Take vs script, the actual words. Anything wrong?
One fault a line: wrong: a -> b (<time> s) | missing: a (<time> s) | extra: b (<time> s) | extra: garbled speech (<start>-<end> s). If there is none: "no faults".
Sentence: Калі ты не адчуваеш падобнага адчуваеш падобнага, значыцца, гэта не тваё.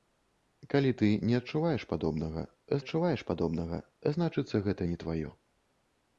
no faults